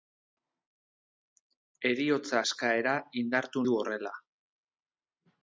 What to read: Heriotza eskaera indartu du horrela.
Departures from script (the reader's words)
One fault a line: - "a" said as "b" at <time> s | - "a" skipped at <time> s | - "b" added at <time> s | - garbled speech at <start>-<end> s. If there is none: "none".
none